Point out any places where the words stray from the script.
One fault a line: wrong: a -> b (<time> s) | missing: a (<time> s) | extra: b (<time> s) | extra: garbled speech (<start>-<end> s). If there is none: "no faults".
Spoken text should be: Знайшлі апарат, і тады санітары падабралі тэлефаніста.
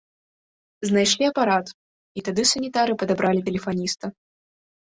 no faults